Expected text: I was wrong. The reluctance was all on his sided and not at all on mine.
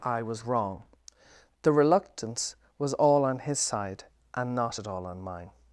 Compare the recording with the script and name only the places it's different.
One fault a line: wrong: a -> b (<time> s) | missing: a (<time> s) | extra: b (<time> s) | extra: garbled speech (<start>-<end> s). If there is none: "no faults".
wrong: sided -> side (3.6 s)